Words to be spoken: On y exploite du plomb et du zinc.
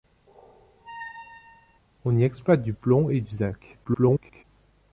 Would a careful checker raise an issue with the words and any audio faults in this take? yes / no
yes